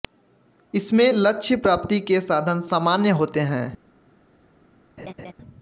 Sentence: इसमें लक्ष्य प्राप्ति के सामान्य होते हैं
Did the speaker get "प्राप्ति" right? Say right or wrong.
right